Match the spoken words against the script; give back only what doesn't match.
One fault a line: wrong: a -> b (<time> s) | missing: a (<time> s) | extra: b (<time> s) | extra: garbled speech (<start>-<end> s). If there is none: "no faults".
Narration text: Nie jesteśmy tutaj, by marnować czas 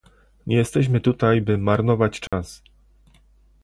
no faults